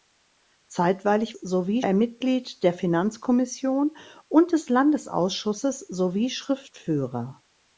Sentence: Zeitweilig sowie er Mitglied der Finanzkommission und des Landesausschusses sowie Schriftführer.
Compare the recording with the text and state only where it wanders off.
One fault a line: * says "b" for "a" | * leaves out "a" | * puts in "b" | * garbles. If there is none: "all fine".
all fine